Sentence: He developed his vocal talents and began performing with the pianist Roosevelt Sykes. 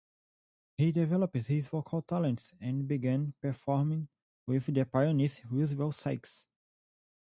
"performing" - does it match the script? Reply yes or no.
yes